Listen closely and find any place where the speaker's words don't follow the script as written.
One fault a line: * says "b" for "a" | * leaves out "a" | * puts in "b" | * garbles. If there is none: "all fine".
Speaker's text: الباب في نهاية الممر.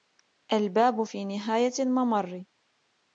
all fine